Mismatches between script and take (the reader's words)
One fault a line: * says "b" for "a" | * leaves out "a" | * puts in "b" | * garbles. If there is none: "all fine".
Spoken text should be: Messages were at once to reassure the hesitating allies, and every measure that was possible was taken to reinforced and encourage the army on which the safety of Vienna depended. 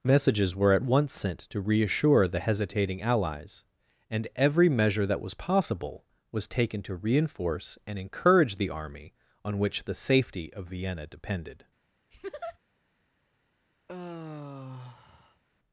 * puts in "sent"
* says "reinforce" for "reinforced"